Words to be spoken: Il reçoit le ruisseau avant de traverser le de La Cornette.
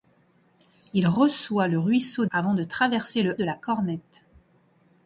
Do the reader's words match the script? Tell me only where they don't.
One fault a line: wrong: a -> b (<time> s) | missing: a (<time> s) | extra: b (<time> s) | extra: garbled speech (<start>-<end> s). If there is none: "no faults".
no faults